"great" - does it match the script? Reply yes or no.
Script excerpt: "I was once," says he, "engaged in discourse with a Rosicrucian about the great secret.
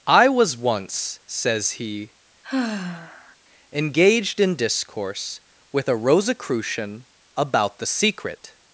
no